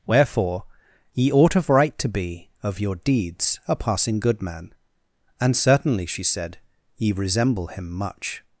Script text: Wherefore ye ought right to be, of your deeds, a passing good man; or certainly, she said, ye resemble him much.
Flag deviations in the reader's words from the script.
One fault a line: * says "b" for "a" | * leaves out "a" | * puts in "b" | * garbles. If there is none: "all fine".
* puts in "of"
* says "and" for "or"